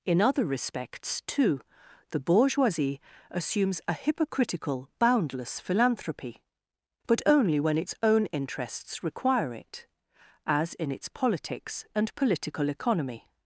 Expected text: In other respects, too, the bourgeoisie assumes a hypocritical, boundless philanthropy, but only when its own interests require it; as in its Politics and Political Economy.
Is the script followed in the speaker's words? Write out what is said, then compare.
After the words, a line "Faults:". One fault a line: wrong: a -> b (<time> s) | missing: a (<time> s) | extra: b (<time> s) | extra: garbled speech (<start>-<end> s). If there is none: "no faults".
In other respects, too, the bourgeoisie assumes a hypocritical, boundless philanthropy, but only when its own interests require it; as in its Politics and Political Economy.
Faults:
no faults